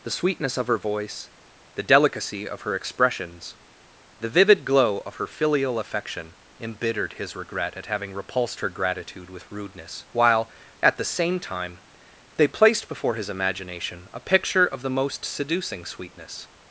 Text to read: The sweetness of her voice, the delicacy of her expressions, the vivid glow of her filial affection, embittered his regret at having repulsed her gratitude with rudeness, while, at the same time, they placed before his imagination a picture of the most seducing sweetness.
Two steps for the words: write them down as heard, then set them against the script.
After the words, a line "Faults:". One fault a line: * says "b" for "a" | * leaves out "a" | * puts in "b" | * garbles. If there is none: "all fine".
The sweetness of her voice, the delicacy of her expressions, the vivid glow of her filial affection, embittered his regret at having repulsed her gratitude with rudeness, while, at the same time, they placed before his imagination a picture of the most seducing sweetness.
Faults:
all fine